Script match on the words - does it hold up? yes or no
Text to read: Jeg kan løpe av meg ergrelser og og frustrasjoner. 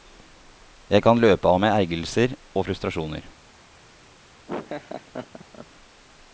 no